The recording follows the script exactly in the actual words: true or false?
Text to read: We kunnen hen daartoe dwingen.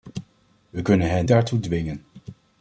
true